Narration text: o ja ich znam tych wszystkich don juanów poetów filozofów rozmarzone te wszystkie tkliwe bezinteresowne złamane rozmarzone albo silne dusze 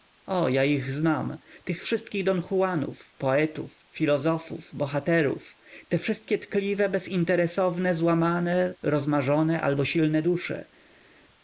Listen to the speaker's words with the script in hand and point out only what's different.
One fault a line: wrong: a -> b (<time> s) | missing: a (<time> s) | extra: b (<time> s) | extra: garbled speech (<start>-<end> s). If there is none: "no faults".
wrong: rozmarzone -> bohaterów (4.8 s)